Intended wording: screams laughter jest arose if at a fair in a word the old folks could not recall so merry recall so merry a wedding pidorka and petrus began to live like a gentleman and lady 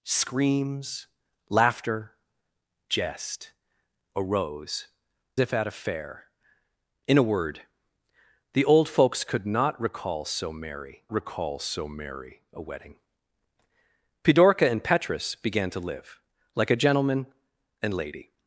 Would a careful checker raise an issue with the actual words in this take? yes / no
no